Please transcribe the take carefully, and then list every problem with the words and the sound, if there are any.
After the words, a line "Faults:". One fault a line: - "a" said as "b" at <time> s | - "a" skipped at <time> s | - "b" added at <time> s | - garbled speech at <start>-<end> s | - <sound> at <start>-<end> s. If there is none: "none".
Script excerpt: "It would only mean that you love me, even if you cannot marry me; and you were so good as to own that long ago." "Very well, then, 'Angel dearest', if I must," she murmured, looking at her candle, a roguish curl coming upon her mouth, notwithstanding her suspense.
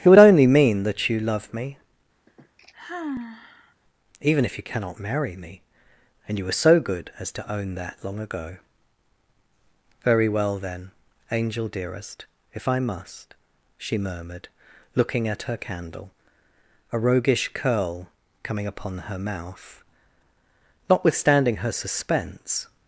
"It would only mean that you love me, even if you cannot marry me; and you were so good as to own that long ago." "Very well, then, 'Angel dearest', if I must," she murmured, looking at her candle, a roguish curl coming upon her mouth, notwithstanding her suspense.
Faults:
- sigh at 2.3-3.7 s